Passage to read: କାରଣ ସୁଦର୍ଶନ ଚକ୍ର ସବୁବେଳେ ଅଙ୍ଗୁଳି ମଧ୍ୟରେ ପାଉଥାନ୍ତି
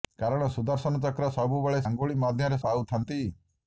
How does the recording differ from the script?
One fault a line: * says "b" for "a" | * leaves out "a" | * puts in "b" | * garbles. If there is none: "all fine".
all fine